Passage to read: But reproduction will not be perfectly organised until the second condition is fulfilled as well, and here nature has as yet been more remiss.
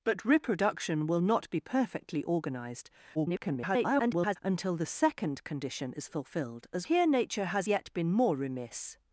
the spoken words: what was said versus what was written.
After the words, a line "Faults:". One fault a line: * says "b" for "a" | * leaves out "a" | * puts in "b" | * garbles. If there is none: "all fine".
But reproduction will not be perfectly organised [garbled] until the second condition is fulfilled as here nature has yet been more remiss.
Faults:
* garbles
* leaves out "well and"
* leaves out "as"